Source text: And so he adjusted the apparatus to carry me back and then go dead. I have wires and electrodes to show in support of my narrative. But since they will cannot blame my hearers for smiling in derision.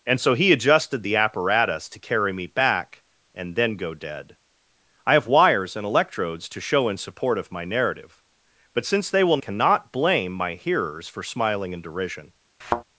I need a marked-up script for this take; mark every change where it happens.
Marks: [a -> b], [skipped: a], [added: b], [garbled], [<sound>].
And so he adjusted the apparatus to carry me back and then go dead. I have wires and electrodes to show in support of my narrative. But since they will cannot blame my hearers for smiling in derision. [thud]